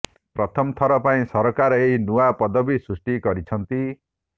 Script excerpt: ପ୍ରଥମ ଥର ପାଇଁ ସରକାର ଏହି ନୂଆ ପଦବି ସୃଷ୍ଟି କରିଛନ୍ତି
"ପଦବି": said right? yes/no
yes